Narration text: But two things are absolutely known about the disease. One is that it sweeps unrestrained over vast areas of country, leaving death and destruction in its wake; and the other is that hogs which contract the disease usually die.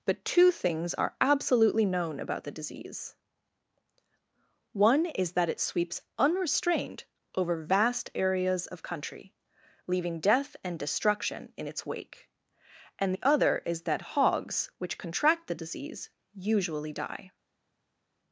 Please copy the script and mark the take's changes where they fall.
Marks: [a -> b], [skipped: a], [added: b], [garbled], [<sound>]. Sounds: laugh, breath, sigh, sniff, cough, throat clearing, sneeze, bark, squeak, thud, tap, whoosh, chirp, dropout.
But two things are absolutely known about the disease. One is that it sweeps unrestrained over vast areas of country, leaving death and destruction in its wake; and the other is that hogs which contract the disease usually die.